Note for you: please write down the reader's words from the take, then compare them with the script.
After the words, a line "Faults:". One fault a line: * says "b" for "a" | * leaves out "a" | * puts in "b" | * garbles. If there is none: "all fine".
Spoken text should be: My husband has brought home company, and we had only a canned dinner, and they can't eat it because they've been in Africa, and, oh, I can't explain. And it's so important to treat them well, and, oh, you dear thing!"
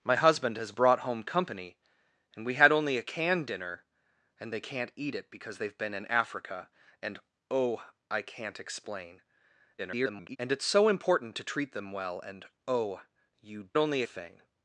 My husband has brought home company, and we had only a canned dinner, and they can't eat it because they've been in Africa, and, oh, I can't explain. [garbled] And it's so important to treat them well, and, oh, you only thing!"
Faults:
* garbles
* says "only" for "dear"